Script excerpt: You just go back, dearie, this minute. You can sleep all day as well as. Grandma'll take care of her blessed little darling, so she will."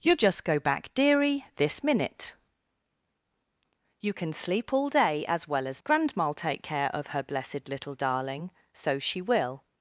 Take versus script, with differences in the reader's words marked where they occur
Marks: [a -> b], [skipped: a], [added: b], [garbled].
You just go back, dearie, this minute. You can sleep all day as well as. Grandma'll take care of her blessed little darling, so she will."